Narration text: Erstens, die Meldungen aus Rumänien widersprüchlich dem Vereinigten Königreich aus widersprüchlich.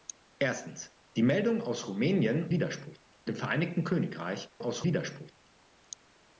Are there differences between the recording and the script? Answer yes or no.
no